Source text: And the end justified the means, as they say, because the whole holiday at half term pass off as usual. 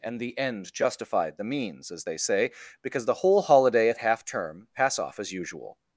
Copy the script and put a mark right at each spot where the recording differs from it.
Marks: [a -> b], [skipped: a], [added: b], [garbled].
And the end justified the means, as they say, because the whole holiday at half term pass off as usual.